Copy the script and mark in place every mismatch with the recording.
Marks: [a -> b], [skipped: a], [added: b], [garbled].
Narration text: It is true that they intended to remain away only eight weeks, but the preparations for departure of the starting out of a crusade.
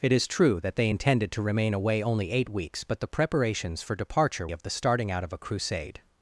It is true that they intended to remain away only eight weeks, but the preparations for departure of the starting out of a crusade.